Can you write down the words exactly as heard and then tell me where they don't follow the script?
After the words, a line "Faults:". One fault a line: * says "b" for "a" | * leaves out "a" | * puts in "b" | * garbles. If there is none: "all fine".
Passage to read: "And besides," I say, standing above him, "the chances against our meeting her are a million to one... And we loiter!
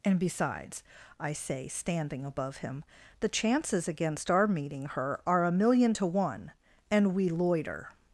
"And besides," I say, standing above him, "the chances against our meeting her are a million to one... And we loiter!
Faults:
all fine